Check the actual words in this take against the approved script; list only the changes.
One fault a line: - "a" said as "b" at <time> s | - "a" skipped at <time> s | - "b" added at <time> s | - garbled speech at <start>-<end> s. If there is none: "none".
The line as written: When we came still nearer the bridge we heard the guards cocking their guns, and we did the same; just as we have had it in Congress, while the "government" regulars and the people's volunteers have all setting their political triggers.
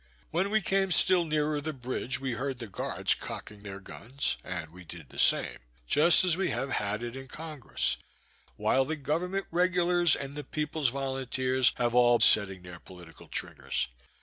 none